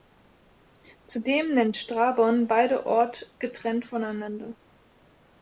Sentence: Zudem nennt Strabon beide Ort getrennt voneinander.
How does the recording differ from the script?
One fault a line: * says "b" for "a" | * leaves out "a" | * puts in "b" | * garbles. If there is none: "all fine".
all fine